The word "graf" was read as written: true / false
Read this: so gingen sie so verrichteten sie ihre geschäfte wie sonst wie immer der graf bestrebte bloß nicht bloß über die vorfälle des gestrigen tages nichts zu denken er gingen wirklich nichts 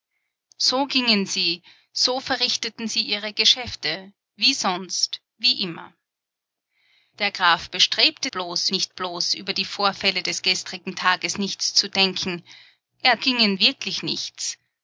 true